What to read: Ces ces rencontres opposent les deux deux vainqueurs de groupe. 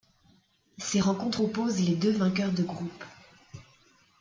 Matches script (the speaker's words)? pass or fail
fail